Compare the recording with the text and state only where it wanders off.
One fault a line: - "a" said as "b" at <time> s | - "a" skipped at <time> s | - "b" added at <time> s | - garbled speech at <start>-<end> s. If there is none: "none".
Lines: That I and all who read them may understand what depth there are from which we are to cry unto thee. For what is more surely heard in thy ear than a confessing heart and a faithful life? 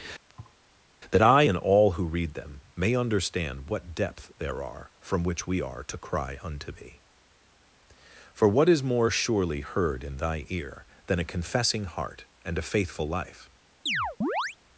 none